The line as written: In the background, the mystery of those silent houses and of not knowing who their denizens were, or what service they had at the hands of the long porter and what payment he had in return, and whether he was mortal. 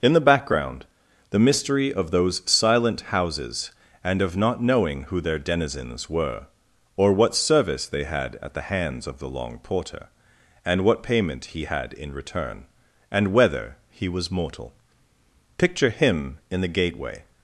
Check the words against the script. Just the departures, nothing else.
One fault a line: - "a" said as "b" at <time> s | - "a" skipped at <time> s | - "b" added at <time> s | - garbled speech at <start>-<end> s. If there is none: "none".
- "Picture him in the gateway" added at 15.6 s